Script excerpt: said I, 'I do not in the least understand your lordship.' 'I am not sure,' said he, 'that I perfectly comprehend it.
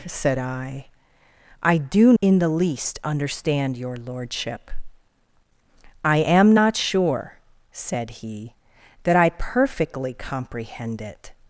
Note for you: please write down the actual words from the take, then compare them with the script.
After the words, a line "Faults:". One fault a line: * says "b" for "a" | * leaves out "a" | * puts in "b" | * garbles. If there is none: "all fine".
said I, 'I do in the least understand your lordship.' 'I am not sure,' said he, 'that I perfectly comprehend it.
Faults:
* leaves out "not"